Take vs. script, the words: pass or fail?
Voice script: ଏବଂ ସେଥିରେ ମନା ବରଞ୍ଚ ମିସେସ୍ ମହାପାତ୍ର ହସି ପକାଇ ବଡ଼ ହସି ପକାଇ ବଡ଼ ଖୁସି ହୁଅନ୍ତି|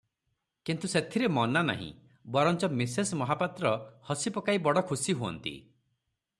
fail